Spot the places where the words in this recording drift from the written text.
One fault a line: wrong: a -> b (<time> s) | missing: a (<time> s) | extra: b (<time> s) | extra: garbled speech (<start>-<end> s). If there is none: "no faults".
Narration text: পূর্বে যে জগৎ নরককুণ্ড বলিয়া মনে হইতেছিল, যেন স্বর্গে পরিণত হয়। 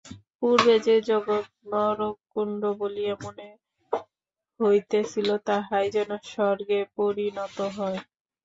extra: তাহাই (5.5 s)